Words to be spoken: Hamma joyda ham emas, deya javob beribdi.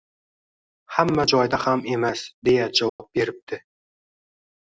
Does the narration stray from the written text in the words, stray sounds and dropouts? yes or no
yes